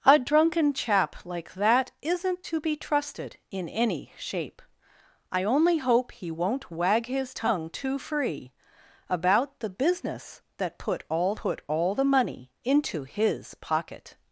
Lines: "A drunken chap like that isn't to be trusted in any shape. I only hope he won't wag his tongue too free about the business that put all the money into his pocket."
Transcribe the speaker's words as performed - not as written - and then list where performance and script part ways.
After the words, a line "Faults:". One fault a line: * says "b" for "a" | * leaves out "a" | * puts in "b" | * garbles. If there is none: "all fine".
"A drunken chap like that isn't to be trusted in any shape. I only hope he won't wag his tongue too free about the business that put all put all the money into his pocket."
Faults:
* puts in "put all"